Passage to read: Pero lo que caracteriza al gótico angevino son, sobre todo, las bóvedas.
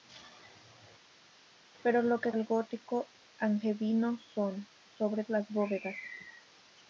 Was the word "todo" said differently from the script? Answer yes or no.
yes